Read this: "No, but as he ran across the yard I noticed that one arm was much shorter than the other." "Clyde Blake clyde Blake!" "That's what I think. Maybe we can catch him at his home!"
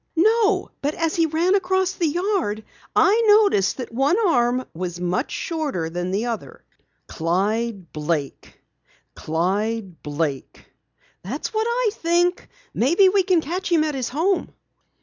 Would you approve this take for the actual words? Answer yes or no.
yes